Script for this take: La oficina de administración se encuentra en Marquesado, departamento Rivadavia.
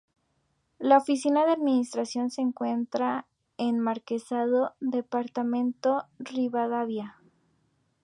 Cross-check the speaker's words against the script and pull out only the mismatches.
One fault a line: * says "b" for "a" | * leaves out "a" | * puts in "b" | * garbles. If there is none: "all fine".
all fine